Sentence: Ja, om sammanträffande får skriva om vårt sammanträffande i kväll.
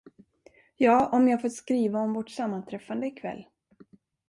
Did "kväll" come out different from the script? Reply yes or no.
no